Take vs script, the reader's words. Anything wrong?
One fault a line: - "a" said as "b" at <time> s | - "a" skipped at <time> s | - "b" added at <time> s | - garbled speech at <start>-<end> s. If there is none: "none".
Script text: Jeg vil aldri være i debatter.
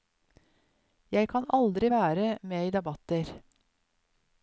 - "vil" said as "kan" at 1.3 s
- "med" added at 2.4 s